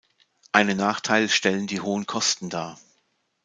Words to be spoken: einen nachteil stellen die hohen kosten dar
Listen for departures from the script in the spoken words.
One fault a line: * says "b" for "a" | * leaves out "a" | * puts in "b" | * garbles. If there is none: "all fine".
all fine